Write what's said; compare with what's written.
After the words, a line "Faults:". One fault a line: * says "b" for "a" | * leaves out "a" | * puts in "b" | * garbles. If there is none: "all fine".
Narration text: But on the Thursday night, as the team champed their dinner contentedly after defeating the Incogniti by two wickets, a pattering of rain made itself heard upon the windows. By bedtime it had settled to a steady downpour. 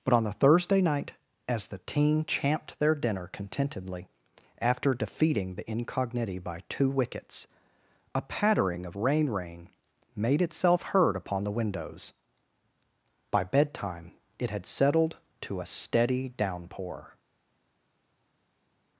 But on the Thursday night, as the team champed their dinner contentedly after defeating the Incogniti by two wickets, a pattering of rain rain made itself heard upon the windows. By bedtime it had settled to a steady downpour.
Faults:
* puts in "rain"